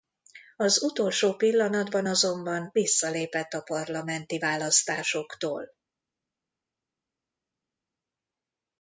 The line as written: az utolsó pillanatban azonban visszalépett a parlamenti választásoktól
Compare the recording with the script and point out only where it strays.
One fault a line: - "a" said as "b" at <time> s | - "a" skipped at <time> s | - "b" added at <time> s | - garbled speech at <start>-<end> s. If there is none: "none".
none